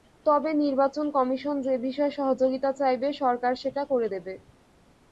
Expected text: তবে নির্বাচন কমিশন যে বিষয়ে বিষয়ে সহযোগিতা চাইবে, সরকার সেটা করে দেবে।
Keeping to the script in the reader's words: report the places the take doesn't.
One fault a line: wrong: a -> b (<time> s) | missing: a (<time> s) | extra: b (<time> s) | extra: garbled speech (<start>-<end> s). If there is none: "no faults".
missing: বিষয়ে (2.1 s)